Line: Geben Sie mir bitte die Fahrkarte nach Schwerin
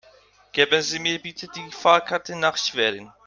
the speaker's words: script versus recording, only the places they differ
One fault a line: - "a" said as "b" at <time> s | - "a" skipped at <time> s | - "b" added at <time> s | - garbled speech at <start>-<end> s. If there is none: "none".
none